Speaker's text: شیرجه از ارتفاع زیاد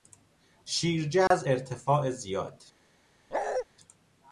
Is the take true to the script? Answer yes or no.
yes